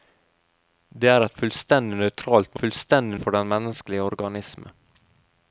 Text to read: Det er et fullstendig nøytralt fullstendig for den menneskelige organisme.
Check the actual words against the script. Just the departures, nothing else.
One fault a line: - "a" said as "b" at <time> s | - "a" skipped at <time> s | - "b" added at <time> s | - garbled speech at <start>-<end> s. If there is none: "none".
none